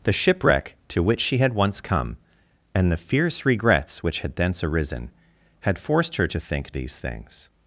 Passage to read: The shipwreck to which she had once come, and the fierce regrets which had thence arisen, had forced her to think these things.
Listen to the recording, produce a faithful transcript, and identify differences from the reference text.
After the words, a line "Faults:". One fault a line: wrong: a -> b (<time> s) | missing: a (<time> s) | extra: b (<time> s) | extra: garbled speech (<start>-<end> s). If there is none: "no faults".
The shipwreck to which she had once come, and the fierce regrets which had thence arisen, had forced her to think these things.
Faults:
no faults